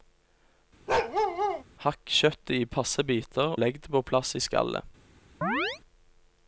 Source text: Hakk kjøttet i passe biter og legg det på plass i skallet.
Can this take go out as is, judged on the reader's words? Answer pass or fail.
fail